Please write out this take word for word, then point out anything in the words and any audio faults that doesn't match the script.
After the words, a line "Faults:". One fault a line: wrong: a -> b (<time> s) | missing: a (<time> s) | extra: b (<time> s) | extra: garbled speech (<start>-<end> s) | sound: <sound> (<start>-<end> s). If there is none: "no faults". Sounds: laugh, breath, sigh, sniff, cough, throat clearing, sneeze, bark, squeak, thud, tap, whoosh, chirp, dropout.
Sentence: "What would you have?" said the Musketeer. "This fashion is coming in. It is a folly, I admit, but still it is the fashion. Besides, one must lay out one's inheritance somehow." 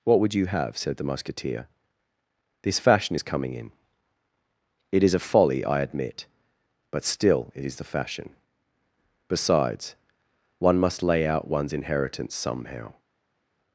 "What would you have?" said the Musketeer. "This fashion is coming in. It is a folly, I admit, but still it is the fashion. Besides, one must lay out one's inheritance somehow."
Faults:
no faults